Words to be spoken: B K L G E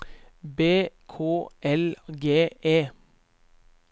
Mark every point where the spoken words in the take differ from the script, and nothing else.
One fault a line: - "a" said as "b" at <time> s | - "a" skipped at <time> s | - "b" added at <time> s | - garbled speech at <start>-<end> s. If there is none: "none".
none